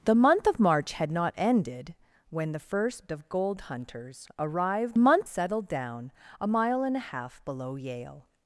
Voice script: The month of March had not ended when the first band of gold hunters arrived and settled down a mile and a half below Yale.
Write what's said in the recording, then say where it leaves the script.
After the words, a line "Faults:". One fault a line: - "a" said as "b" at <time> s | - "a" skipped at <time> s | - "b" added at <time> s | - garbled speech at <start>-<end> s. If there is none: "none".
The month of March had not ended when the first of gold hunters arrived month settled down a mile and a half below Yale.
Faults:
- "band" skipped at 3.1 s
- "and" said as "month" at 5.0 s